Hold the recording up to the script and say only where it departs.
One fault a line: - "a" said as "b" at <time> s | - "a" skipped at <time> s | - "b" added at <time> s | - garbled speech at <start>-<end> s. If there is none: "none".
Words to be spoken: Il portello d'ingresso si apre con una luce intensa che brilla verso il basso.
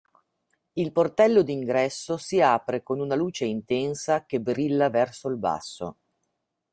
none